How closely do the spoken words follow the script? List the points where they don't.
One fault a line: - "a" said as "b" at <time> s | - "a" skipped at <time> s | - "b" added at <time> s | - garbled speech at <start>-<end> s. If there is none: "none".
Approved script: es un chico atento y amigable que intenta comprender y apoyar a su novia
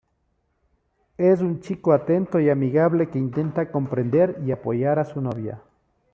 none